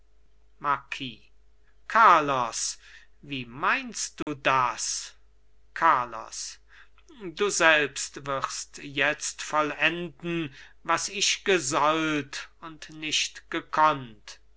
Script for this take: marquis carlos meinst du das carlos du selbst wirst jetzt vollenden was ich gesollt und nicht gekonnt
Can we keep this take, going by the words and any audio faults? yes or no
no